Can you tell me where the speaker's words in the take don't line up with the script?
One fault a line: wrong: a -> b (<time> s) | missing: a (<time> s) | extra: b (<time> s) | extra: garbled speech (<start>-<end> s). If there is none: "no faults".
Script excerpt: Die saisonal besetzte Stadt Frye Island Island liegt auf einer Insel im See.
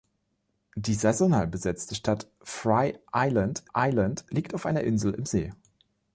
no faults